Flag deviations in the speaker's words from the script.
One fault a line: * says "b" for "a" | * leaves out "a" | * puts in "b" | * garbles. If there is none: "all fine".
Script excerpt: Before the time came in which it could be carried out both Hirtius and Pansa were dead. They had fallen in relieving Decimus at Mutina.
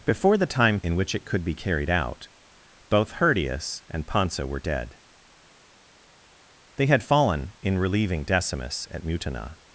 * leaves out "came"